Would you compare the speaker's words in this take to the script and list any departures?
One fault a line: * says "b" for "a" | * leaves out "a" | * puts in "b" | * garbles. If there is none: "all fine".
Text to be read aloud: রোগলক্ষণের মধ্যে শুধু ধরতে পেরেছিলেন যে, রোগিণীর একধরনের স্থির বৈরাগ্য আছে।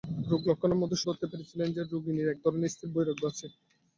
* leaves out "শুধু"